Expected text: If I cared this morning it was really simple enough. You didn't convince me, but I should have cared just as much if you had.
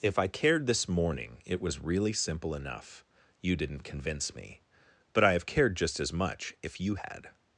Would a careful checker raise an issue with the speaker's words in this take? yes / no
yes